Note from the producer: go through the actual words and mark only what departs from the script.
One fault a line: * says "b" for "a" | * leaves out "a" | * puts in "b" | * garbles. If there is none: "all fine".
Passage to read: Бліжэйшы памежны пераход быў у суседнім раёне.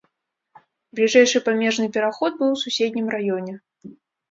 all fine